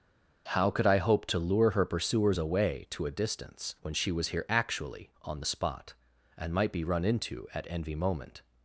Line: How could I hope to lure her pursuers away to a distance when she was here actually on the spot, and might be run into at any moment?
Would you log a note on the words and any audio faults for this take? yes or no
yes